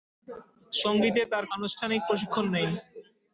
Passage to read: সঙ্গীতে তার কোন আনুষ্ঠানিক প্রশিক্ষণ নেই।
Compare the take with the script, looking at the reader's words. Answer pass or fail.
fail